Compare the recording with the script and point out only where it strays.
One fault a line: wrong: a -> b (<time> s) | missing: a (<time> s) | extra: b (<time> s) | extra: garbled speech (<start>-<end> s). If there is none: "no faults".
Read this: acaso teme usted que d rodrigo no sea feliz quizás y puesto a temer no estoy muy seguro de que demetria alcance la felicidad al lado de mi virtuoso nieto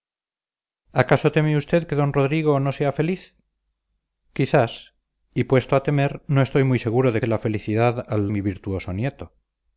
missing: que demetria alcance (7.2 s)
missing: lado de (8.2 s)